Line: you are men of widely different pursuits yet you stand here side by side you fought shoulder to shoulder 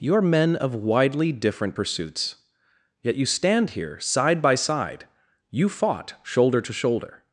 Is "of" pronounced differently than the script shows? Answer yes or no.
no